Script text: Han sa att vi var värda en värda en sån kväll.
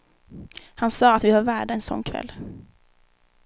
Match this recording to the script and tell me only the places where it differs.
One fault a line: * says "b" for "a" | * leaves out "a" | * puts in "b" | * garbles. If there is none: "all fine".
* leaves out "värda en"